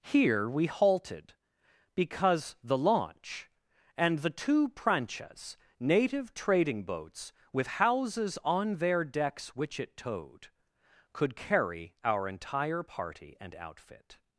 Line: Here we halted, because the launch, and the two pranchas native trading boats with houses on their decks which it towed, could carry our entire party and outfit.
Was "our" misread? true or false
false